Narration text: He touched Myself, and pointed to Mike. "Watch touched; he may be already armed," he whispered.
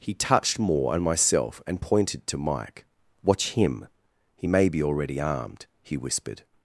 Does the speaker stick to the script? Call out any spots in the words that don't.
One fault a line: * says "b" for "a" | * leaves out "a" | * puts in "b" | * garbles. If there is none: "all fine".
* puts in "Moore and"
* says "him" for "touched"